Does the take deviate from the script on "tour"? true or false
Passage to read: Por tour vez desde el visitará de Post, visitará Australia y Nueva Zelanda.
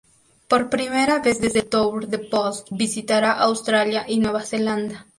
true